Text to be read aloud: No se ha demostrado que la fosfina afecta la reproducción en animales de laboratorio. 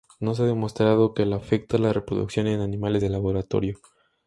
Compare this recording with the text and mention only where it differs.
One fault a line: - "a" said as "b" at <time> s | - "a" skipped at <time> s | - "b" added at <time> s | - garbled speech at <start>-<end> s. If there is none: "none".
- "fosfina" skipped at 1.4 s